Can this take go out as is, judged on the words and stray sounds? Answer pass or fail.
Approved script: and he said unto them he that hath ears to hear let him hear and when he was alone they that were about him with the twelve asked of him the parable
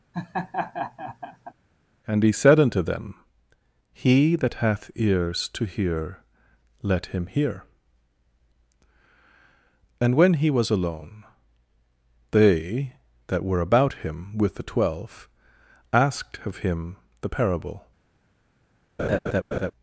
fail